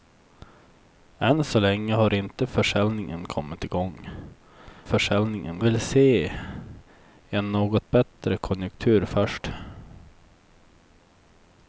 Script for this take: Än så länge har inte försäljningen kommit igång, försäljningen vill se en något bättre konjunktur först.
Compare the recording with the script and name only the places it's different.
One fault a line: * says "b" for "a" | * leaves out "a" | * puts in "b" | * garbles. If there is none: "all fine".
all fine